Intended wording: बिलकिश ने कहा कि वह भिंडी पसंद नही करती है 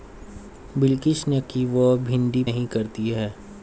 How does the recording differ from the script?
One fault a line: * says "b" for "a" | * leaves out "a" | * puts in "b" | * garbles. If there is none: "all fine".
* leaves out "कहा"
* leaves out "पसंद"